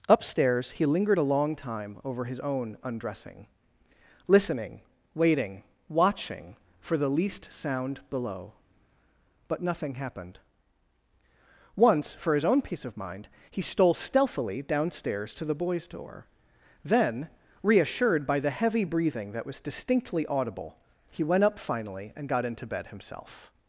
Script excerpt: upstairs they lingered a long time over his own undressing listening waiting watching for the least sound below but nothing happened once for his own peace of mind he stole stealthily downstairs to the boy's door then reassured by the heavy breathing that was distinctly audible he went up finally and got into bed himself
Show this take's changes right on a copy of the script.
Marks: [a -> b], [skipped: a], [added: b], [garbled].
upstairs [they -> he] lingered a long time over his own undressing listening waiting watching for the least sound below but nothing happened once for his own peace of mind he stole stealthily downstairs to the boy's door then reassured by the heavy breathing that was distinctly audible he went up finally and got into bed himself